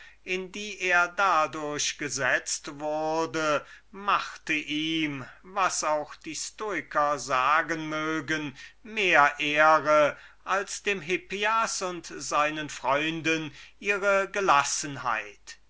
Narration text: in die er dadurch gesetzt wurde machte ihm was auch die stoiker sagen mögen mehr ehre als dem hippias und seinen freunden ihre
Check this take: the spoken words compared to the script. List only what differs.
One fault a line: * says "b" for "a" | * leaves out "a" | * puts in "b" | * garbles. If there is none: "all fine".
all fine